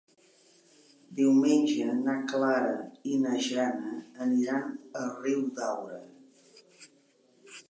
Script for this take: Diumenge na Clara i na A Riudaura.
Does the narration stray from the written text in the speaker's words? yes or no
yes